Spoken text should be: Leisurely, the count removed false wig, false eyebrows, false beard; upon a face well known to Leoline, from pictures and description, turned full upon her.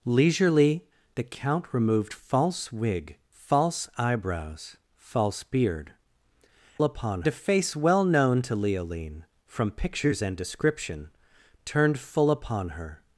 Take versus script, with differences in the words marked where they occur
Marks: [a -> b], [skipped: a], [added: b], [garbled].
Leisurely, the count removed false wig, false eyebrows, false beard; upon a face well known to Leoline, from pictures and description, turned full upon her.